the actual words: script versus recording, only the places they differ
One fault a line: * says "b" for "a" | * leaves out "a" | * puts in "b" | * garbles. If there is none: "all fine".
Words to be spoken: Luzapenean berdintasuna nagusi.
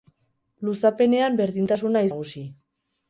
all fine